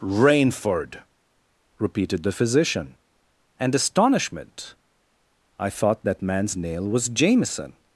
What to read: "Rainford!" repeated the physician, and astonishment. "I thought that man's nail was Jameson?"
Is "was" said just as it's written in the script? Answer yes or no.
yes